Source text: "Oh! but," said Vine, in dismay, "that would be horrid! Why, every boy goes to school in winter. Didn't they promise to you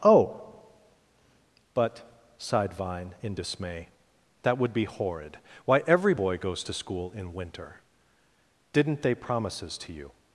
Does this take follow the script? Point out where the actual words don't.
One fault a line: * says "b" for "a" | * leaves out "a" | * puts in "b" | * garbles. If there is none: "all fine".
* says "sighed" for "said"
* says "promises" for "promise"